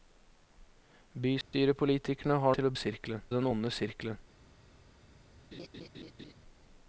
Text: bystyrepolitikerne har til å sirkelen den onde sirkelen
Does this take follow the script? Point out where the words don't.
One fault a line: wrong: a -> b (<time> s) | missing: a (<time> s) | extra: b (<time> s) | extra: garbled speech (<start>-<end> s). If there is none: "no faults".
no faults